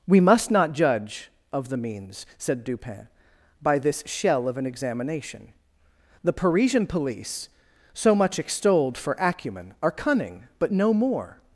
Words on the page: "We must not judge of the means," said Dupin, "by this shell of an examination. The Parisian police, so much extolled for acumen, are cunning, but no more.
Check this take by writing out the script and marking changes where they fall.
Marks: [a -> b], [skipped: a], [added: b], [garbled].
"We must not judge of the means," said Dupin, "by this shell of an examination. The Parisian police, so much extolled for acumen, are cunning, but no more.